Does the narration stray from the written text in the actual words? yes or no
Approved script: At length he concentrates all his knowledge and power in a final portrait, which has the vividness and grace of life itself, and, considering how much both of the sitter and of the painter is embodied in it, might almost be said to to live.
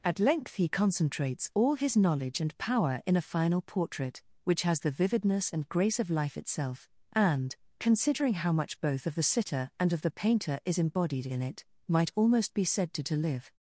no